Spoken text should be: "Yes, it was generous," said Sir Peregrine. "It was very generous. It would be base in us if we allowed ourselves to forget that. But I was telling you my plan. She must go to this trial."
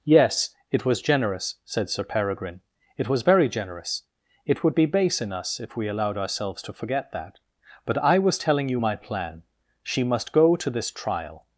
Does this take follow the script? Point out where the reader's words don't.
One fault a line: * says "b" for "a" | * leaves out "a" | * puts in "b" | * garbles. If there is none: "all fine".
all fine